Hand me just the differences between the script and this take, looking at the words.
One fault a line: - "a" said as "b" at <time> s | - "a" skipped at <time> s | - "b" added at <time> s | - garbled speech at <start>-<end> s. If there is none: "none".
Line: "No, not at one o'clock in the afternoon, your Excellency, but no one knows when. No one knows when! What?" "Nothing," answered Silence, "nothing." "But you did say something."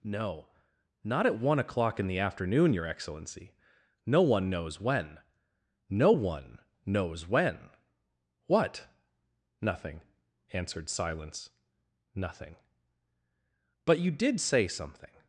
- "but" skipped at 3.5 s